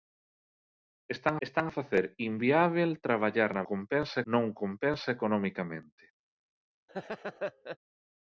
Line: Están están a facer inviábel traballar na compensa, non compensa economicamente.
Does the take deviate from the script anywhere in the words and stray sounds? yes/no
yes